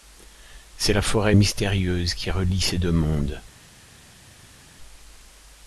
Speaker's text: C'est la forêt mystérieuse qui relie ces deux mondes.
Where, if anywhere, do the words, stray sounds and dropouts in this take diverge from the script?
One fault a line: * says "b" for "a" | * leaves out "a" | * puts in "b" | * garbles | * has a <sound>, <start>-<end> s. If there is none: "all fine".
all fine